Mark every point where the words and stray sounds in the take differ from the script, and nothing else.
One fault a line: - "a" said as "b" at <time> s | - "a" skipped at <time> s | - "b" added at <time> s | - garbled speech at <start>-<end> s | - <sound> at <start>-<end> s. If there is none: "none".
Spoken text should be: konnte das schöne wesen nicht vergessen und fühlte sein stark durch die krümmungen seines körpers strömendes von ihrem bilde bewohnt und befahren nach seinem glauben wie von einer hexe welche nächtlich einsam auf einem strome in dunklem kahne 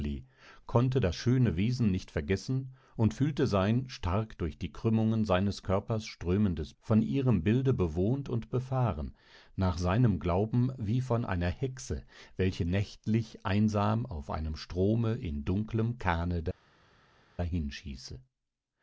none